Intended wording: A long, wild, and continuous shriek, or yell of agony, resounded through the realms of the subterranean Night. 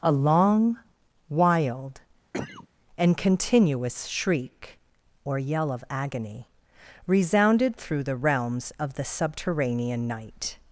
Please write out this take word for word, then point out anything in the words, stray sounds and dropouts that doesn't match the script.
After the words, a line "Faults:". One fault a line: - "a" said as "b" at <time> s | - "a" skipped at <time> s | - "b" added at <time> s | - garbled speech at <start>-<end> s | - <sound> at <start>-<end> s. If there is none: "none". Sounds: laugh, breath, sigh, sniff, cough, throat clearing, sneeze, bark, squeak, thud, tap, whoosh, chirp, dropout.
A long, wild, and continuous shriek, or yell of agony, resounded through the realms of the subterranean Night.
Faults:
- cough at 2.3-2.7 s